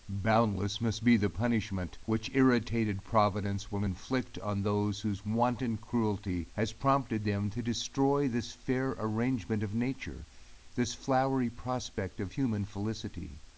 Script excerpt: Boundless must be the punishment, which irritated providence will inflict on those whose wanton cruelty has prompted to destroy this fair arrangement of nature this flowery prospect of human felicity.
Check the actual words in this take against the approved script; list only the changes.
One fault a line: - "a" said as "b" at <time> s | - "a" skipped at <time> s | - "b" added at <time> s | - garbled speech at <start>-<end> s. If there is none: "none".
- "them" added at 7.2 s